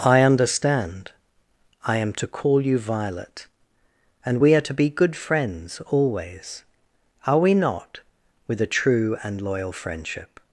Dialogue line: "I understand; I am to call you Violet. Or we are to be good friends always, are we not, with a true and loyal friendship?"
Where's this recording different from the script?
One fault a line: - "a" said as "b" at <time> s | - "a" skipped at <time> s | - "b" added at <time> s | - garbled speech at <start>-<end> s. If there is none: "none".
- "Or" said as "And" at 4.2 s